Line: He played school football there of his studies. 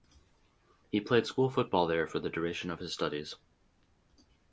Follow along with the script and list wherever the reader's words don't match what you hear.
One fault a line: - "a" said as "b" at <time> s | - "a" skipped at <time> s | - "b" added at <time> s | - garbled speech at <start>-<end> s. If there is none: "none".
- "for the duration" added at 2.1 s